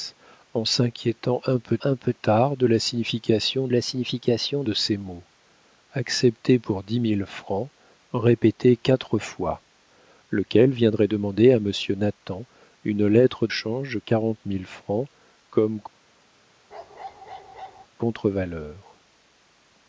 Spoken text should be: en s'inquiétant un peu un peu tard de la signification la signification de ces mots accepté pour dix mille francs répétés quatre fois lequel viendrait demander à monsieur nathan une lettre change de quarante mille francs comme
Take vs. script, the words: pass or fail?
pass